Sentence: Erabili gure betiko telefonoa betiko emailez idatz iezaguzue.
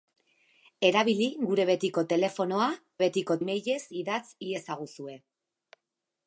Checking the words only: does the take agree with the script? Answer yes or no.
yes